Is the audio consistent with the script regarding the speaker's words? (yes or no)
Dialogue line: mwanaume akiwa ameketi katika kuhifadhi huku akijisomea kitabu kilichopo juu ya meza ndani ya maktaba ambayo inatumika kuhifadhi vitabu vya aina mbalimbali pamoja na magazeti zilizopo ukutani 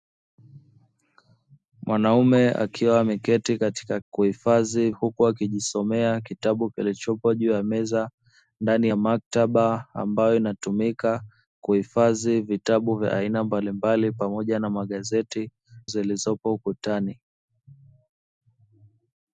yes